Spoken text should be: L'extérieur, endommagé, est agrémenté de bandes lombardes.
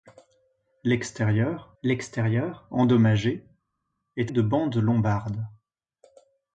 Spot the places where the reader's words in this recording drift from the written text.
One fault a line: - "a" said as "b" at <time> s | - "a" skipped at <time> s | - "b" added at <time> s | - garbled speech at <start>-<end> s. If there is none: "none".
- "l'extérieur" added at 1.8 s
- "agrémenté" skipped at 4.3 s